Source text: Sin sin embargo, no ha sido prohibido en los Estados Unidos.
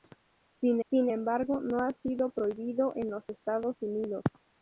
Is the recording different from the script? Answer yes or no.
no